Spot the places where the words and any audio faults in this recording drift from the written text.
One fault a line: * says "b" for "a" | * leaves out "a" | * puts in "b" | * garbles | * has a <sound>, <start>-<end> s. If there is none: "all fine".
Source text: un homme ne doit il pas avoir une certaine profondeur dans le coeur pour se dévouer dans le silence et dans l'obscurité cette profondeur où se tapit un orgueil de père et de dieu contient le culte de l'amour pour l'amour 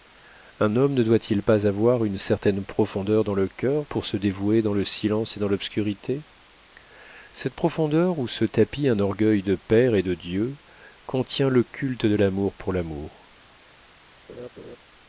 * has a laugh, 14.3-14.8 s